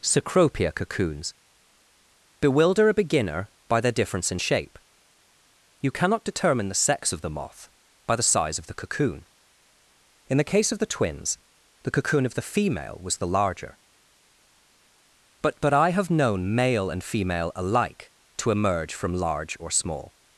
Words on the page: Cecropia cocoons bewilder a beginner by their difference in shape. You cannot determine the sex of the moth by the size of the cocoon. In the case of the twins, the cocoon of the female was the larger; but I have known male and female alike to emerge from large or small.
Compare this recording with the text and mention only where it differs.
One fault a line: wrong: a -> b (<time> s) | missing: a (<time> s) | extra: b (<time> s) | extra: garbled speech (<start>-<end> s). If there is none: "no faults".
extra: but (15.6 s)